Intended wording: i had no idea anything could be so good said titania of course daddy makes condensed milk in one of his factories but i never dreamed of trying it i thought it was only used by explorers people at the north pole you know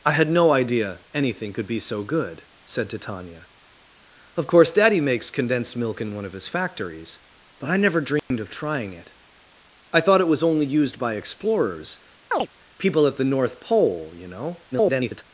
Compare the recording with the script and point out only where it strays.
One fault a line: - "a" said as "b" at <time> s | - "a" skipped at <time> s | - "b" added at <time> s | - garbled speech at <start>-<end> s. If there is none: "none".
- garbled speech at 14.7-15.2 s